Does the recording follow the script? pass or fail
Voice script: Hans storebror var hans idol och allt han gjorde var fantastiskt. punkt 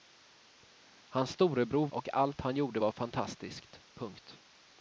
fail